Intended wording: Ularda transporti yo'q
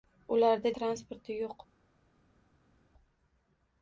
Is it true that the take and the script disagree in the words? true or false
false